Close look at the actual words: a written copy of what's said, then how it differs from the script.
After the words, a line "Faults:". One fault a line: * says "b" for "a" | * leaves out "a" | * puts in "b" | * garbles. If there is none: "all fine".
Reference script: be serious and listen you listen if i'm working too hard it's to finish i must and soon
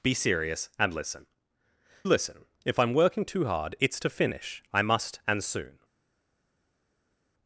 be serious and listen listen if i'm working too hard it's to finish i must and soon
Faults:
* leaves out "you"